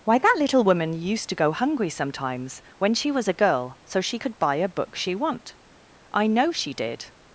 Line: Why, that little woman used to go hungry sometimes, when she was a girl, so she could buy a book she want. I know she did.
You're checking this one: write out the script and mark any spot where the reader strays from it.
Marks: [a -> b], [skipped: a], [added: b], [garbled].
Why, that little woman used to go hungry sometimes, when she was a girl, so she could buy a book she want. I know she did.